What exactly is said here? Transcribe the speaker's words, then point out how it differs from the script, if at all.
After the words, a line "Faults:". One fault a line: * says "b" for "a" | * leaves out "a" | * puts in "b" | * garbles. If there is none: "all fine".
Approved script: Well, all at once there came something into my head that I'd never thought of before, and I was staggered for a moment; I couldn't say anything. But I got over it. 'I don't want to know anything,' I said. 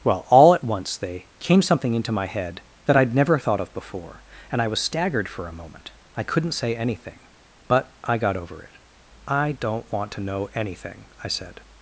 Well, all at once they came something into my head that I'd never thought of before, and I was staggered for a moment; I couldn't say anything. But I got over it. 'I don't want to know anything,' I said.
Faults:
* says "they" for "there"